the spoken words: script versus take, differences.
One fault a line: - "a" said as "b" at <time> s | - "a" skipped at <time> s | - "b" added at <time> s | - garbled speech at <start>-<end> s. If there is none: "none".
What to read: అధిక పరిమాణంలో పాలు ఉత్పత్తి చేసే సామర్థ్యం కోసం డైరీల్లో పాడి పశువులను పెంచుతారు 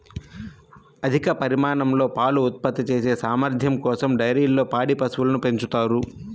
none